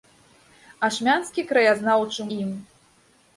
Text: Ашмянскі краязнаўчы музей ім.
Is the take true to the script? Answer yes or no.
no